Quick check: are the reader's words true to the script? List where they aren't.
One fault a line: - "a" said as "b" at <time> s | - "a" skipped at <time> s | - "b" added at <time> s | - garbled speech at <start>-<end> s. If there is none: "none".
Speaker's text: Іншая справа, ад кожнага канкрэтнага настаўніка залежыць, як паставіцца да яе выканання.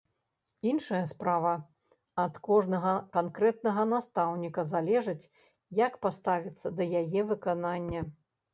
none